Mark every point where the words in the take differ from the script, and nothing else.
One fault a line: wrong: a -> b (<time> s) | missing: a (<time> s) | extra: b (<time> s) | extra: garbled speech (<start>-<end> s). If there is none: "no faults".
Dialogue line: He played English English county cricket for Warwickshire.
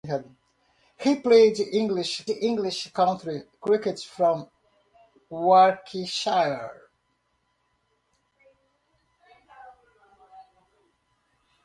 no faults